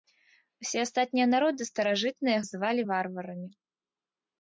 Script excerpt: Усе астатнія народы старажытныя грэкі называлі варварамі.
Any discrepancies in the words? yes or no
yes